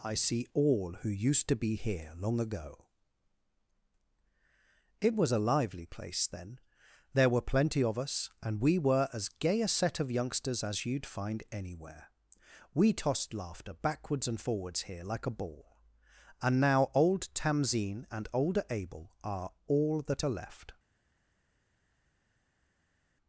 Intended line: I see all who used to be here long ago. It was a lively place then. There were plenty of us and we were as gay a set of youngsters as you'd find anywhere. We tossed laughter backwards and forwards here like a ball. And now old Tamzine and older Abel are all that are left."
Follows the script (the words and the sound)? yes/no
yes